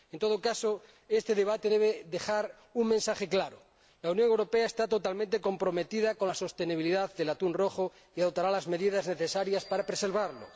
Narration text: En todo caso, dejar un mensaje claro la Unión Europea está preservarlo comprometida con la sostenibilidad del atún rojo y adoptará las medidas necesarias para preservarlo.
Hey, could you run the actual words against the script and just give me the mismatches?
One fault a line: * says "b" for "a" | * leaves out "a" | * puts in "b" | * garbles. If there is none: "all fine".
* puts in "este debate debe"
* says "totalmente" for "preservarlo"